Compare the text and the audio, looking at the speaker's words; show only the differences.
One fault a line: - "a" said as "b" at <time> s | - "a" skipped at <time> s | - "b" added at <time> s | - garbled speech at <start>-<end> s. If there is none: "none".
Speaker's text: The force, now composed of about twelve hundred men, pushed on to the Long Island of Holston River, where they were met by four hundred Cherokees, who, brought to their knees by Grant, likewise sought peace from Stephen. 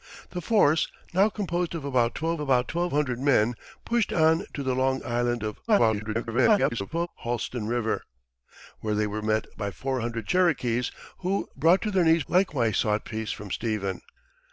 - "about twelve" added at 2.4 s
- garbled speech at 5.7-7.1 s
- "by Grant" skipped at 12.2 s